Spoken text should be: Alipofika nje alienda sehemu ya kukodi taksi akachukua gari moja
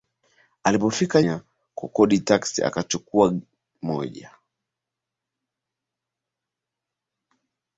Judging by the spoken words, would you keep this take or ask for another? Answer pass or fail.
fail